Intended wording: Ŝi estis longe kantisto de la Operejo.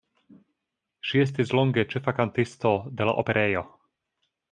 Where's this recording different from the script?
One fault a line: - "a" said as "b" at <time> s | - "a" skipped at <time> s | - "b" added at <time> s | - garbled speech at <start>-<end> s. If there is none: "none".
- "ĉefa" added at 1.9 s